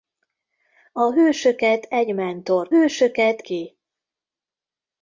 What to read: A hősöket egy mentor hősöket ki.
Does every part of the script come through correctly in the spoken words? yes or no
yes